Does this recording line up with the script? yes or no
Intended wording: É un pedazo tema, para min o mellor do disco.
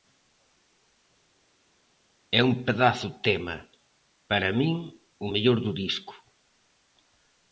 yes